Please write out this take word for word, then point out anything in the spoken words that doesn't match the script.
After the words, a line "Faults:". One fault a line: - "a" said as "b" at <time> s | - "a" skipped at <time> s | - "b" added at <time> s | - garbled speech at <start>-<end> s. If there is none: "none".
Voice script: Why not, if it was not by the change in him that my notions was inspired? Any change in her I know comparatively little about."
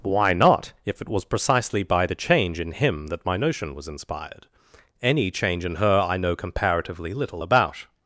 Why not, if it was precisely by the change in him that my notion was inspired? Any change in her I know comparatively little about."
Faults:
- "not" said as "precisely" at 1.2 s
- "notions" said as "notion" at 3.3 s